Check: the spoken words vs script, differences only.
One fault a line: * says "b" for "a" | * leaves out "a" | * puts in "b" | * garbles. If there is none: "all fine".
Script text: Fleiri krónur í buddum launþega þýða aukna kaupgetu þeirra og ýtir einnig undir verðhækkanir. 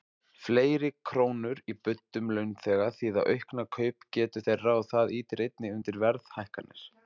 * puts in "það"